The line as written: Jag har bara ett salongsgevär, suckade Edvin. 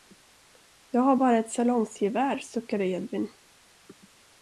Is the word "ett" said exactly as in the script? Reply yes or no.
yes